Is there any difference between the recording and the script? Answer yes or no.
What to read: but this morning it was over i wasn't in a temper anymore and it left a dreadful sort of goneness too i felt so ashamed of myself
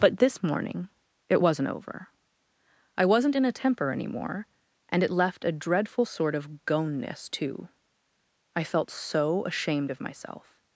yes